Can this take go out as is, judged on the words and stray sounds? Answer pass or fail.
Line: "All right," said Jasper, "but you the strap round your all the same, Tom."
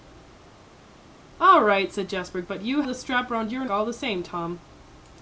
pass